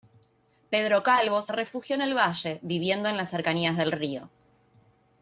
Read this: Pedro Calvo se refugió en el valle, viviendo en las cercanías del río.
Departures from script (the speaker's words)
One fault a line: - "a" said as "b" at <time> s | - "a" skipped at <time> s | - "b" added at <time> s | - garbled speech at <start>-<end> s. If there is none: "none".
none